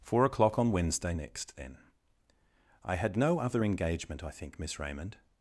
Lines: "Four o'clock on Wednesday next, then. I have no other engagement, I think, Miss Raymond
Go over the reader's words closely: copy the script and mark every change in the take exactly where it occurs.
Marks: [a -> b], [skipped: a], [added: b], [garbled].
"Four o'clock on Wednesday next, then. I [have -> had] no other engagement, I think, Miss Raymond